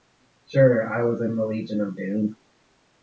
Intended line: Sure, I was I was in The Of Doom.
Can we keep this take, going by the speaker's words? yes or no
no